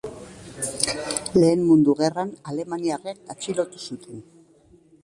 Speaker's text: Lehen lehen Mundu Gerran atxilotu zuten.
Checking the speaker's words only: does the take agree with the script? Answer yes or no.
no